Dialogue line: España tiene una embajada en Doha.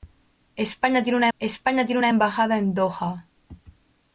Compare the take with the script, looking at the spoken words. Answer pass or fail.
fail